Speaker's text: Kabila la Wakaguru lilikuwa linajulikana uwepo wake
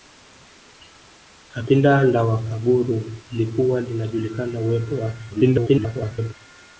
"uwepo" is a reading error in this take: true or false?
false